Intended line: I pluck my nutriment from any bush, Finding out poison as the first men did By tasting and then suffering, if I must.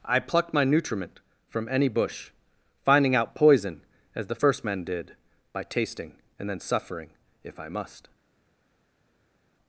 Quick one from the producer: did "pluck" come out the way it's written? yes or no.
no